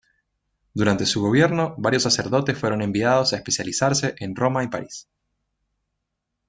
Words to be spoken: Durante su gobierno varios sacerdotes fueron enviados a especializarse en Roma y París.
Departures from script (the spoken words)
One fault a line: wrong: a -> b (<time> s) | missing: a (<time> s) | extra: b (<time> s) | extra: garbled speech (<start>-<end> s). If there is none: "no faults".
no faults